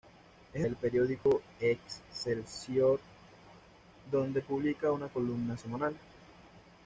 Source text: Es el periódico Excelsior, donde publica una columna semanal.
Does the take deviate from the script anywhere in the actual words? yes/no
no